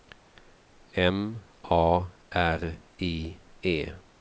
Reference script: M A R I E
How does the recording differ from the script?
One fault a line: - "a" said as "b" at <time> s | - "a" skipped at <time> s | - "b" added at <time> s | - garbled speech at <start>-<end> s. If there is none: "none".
none